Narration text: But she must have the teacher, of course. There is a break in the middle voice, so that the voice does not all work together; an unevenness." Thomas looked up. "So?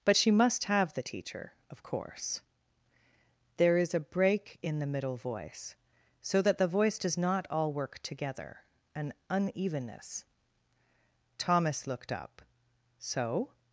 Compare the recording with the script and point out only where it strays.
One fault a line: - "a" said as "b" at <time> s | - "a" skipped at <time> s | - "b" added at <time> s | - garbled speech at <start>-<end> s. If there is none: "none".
none